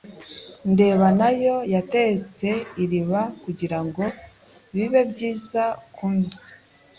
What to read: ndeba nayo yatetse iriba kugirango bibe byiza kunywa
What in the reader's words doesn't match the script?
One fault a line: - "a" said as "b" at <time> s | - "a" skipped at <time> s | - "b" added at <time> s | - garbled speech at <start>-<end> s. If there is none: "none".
none